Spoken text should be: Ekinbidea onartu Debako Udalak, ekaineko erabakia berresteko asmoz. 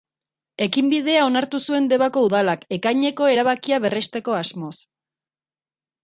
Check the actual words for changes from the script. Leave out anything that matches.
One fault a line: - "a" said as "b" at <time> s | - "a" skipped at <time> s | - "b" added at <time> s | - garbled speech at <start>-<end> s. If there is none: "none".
- "zuen" added at 1.7 s